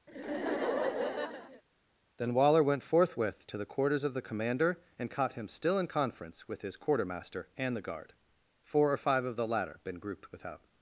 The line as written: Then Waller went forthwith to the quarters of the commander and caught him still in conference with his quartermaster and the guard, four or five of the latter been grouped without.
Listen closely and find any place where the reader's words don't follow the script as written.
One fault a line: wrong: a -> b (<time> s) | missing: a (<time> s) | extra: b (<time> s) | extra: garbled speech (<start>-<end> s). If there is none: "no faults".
no faults